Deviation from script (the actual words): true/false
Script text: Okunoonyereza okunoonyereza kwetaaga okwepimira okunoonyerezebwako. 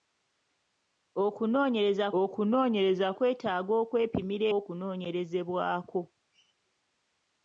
false